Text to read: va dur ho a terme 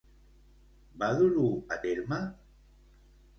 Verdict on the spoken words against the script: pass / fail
pass